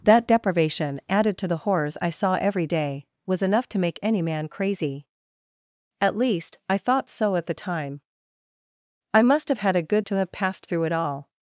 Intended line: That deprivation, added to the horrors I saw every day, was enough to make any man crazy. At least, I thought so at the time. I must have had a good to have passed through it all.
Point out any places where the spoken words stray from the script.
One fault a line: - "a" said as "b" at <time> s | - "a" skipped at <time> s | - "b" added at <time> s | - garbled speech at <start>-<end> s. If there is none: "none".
none